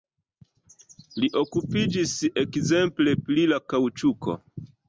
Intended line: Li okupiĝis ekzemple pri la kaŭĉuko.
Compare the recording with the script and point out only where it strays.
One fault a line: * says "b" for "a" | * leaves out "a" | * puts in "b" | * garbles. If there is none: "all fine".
all fine